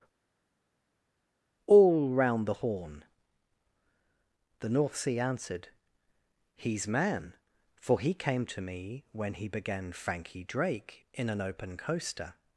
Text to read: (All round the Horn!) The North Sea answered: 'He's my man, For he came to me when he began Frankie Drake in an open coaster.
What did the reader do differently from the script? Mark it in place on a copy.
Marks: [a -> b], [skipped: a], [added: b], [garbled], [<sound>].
(All round the Horn!) The North Sea answered: 'He's [skipped: my] man, For he came to me when he began Frankie Drake in an open coaster.